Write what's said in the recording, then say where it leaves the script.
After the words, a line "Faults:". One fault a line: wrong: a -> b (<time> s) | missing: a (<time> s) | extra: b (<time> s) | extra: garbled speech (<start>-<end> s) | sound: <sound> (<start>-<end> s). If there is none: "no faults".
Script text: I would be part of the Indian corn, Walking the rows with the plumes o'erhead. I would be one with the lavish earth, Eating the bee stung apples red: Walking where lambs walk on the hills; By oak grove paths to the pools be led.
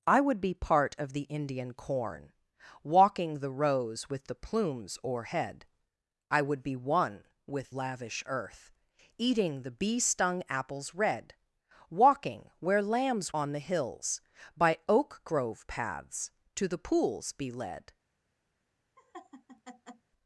I would be part of the Indian corn, Walking the rows with the plumes o'erhead. I would be one with lavish earth, Eating the bee stung apples red: Walking where lambs on the hills; By oak grove paths to the pools be led.
Faults:
missing: the (7.8 s)
missing: walk (13.3 s)
sound: laugh (19.0-20.1 s)